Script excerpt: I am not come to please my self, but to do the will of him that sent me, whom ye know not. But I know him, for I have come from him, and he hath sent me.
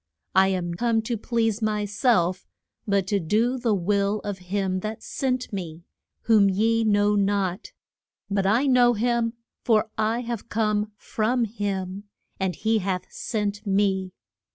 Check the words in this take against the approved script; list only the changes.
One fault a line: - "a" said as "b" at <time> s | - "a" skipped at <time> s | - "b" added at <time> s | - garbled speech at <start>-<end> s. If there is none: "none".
- "not" skipped at 0.7 s